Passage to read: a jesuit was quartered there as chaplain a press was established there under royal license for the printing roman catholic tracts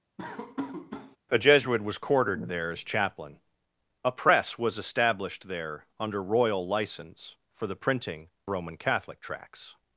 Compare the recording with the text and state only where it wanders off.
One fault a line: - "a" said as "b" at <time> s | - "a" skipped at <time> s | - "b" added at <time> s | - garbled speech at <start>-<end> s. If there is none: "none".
none